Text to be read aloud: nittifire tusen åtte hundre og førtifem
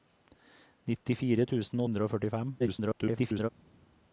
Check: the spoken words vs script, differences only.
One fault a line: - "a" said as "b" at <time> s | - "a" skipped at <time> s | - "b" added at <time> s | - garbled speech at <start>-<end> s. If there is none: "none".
- "åtte" skipped at 1.9 s
- garbled speech at 2.6-3.5 s